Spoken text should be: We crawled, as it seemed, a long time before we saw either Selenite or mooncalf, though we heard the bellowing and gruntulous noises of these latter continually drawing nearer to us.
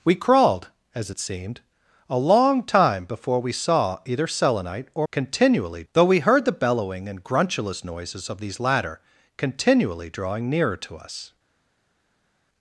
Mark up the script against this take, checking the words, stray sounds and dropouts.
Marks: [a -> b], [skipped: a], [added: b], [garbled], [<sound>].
We crawled, as it seemed, a long time before we saw either Selenite or [mooncalf, -> continually] though we heard the bellowing and gruntulous noises of these latter continually drawing nearer to us.